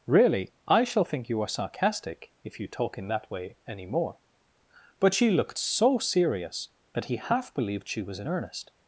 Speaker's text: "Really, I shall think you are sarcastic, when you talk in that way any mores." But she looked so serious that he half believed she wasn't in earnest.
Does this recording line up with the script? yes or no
no